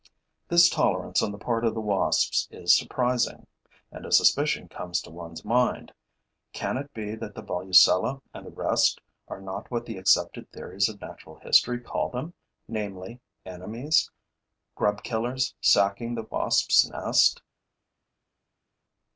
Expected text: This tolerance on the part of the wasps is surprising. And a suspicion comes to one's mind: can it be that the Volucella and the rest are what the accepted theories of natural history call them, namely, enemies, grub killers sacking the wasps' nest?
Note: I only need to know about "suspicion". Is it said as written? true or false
true